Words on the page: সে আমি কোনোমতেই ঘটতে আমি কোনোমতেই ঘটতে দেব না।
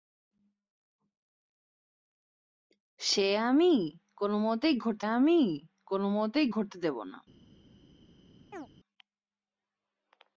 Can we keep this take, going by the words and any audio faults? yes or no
no